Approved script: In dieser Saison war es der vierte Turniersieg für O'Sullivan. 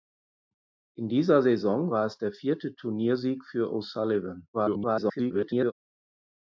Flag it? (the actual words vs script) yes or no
yes